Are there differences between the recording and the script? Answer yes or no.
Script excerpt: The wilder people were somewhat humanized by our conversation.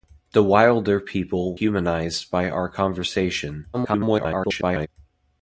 yes